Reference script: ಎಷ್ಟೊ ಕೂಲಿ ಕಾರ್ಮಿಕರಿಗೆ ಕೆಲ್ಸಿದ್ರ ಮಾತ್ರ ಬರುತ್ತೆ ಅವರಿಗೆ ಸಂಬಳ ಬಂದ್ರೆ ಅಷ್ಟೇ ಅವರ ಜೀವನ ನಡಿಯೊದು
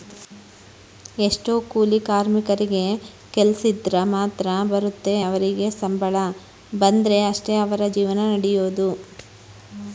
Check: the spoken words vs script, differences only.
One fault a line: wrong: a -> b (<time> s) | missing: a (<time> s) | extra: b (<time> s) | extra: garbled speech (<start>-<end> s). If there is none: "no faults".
no faults